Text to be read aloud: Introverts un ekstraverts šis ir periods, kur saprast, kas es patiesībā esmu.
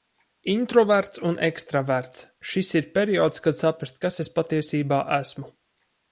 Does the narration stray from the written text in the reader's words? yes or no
yes